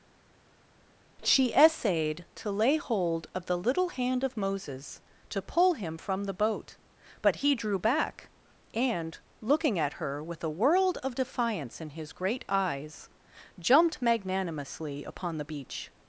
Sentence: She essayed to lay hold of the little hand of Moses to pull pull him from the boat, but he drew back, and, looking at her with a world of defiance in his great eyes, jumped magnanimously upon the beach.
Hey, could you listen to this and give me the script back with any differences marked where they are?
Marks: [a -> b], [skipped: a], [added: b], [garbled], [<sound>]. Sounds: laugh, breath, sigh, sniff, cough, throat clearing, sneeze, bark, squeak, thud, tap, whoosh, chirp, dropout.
She essayed to lay hold of the little hand of Moses to pull [skipped: pull] him from the boat, but he drew back, and, looking at her with a world of defiance in his great eyes, jumped magnanimously upon the beach.